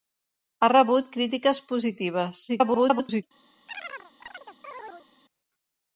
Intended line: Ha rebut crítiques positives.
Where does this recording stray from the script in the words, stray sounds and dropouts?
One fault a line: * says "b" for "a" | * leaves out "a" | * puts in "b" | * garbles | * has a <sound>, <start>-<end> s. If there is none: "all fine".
* garbles
* has a chirp, 3.7-5.1 s